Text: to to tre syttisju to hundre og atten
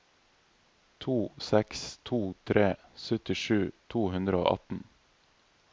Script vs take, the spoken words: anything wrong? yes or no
yes